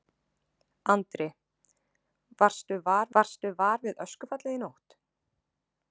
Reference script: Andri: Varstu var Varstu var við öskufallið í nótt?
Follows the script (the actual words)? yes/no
yes